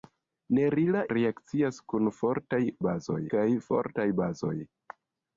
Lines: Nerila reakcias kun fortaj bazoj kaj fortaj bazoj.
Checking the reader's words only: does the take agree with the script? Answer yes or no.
yes